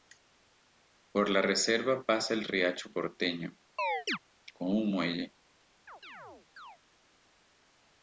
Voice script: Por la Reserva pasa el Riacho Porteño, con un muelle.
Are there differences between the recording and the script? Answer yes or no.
no